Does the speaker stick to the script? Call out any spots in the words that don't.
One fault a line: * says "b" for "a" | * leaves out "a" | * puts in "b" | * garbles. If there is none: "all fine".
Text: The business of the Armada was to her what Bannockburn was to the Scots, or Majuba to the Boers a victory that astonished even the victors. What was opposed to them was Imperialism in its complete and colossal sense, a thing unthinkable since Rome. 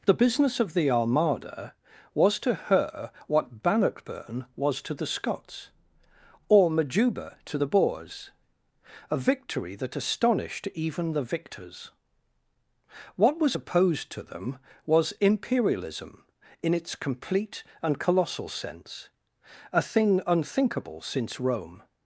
all fine